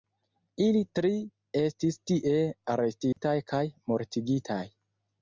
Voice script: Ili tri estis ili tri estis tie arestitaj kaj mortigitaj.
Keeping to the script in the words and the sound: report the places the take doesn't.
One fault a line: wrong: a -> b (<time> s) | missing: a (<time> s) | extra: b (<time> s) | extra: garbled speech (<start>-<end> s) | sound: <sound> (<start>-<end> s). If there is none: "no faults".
missing: ili tri estis (2.0 s)
sound: dropout (3.1-3.2 s)